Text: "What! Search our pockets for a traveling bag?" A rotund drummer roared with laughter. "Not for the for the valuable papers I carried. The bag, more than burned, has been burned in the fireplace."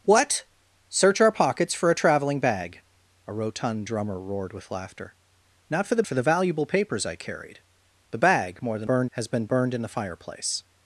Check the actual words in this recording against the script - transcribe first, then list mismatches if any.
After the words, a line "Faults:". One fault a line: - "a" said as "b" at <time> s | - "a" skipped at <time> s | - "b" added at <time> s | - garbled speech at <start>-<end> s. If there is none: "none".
"What! Search our pockets for a traveling bag?" A rotund drummer roared with laughter. "Not for the for the valuable papers I carried. The bag, more than burned, has been burned in the fireplace."
Faults:
none